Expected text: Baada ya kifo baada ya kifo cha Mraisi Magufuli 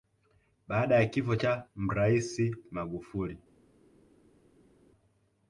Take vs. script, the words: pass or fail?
fail